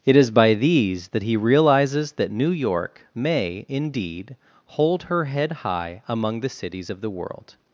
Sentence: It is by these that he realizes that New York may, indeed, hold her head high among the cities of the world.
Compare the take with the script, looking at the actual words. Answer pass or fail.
pass